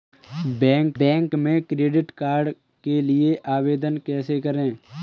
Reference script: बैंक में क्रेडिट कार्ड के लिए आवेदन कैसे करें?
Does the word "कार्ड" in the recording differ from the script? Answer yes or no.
no